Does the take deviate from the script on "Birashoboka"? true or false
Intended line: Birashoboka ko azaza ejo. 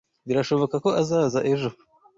false